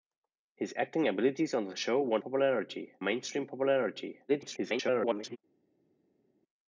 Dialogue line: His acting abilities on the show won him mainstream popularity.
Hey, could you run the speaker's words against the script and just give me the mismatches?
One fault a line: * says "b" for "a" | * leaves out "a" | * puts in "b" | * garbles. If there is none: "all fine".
* says "popularity" for "him"
* garbles